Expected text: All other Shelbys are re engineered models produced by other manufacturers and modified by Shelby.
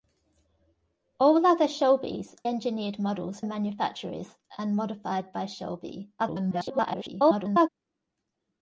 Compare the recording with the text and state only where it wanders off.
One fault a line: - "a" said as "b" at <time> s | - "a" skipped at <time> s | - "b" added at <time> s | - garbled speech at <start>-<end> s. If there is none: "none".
- "are re" skipped at 2.4 s
- "produced by other" skipped at 3.4 s
- garbled speech at 6.2-7.7 s